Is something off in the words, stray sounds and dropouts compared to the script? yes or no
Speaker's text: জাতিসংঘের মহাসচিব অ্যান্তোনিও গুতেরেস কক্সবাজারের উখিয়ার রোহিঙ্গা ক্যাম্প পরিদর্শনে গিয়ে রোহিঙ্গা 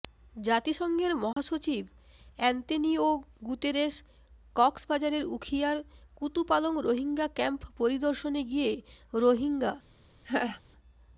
yes